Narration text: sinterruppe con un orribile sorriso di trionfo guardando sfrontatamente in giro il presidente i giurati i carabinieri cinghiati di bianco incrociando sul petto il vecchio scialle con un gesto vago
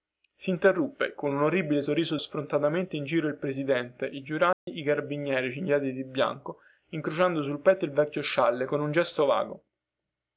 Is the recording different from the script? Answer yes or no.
yes